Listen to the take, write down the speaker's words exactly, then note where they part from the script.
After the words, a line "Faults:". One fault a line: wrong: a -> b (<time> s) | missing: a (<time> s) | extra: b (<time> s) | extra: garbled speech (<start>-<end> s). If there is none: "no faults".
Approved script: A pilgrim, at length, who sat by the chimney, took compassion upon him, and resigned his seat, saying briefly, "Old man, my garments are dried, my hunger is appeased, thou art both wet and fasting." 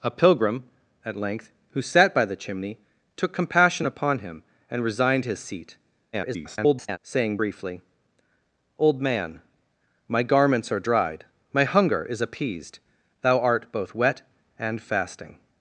A pilgrim, at length, who sat by the chimney, took compassion upon him, and resigned his seat, [garbled] saying briefly, "Old man, my garments are dried, my hunger is appeased, thou art both wet and fasting."
Faults:
extra: garbled speech (6.1-7.0 s)